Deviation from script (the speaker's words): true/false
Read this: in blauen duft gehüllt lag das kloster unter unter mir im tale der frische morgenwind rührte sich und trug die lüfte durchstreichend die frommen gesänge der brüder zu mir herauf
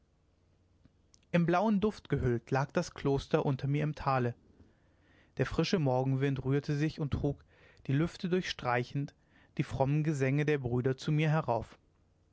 true